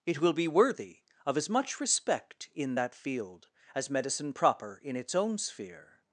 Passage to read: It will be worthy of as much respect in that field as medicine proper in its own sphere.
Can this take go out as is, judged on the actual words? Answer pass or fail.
pass